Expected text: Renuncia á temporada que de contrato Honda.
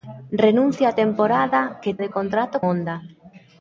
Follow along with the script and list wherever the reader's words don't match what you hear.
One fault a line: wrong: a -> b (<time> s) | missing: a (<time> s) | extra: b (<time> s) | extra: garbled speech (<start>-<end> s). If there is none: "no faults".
no faults